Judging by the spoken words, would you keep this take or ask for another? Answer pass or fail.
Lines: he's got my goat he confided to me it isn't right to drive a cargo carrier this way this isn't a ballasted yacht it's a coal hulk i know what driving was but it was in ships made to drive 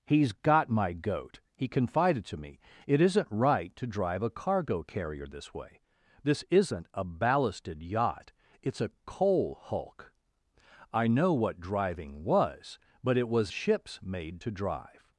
fail